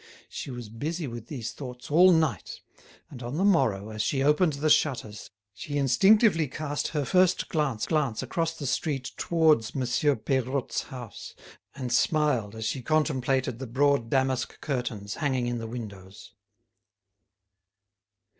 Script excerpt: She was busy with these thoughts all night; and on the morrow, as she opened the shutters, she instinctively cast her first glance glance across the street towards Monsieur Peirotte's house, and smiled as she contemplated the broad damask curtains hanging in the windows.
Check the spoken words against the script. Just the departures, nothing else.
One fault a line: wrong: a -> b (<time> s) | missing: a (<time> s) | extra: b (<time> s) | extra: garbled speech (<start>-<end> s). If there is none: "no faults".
no faults